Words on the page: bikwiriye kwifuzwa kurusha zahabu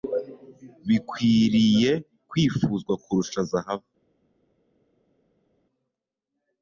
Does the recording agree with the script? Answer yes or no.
yes